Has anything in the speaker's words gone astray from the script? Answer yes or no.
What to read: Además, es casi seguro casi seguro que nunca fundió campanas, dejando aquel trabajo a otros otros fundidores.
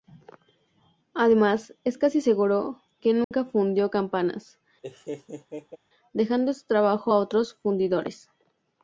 yes